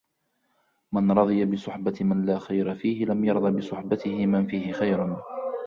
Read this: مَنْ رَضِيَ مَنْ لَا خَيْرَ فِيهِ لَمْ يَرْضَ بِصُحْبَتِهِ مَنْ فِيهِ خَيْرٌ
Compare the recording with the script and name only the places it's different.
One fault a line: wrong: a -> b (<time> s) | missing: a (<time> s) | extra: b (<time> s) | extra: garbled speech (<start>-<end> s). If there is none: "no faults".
extra: بِصُحْبَةِ (1.4 s)